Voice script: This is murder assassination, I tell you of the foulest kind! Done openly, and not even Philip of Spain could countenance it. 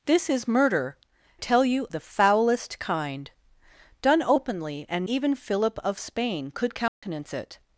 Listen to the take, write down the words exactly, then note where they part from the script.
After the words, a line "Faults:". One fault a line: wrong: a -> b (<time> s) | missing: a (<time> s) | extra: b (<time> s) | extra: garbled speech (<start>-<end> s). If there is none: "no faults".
This is murder tell you the foulest kind! Done openly, and even Philip of Spain could countenance it.
Faults:
missing: assassination I (1.0 s)
missing: of (1.9 s)
missing: not (5.1 s)